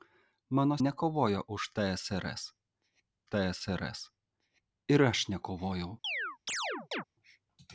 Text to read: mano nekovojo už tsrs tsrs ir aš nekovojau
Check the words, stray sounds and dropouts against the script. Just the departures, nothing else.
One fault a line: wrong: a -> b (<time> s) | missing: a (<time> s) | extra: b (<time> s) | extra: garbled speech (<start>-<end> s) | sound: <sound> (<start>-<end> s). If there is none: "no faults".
sound: chirp (6.0-7.0 s)